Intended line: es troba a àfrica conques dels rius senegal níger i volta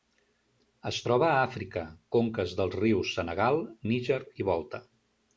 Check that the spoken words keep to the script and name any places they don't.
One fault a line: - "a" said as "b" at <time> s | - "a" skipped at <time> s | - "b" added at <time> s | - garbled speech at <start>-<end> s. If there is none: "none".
none